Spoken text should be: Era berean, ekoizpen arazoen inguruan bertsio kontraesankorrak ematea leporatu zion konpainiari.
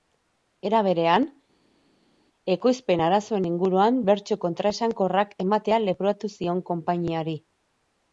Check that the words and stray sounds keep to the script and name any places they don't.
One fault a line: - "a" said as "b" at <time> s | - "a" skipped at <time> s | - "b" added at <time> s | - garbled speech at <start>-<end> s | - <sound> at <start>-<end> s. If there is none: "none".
none